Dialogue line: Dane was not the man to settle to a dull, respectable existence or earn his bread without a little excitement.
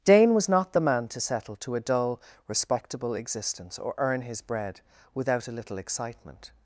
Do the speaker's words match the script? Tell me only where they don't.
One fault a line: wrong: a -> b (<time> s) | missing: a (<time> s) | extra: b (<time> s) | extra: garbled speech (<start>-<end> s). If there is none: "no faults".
no faults